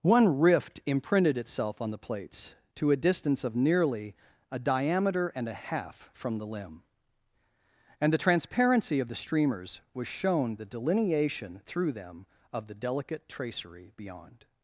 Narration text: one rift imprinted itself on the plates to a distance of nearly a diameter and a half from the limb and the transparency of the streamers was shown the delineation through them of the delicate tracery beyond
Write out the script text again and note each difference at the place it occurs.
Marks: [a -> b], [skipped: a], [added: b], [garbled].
one rift imprinted itself on the plates to a distance of nearly a diameter and a half from the limb and the transparency of the streamers was shown the delineation through them of the delicate tracery beyond